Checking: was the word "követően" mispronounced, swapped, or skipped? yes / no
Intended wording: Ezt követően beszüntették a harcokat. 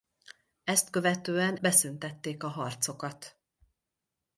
no